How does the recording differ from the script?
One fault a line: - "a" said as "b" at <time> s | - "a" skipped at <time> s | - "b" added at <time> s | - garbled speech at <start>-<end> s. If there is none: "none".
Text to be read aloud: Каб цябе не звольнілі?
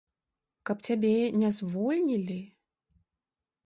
none